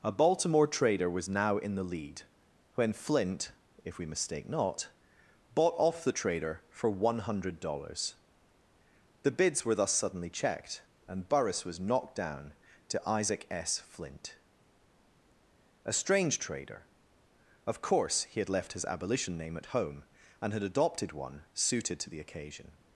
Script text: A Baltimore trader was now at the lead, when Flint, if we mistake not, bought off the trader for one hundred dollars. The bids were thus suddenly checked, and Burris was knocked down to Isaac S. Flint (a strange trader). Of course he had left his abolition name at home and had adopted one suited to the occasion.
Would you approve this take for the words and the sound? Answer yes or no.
no